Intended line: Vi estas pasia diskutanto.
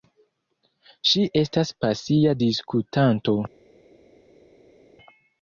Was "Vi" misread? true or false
true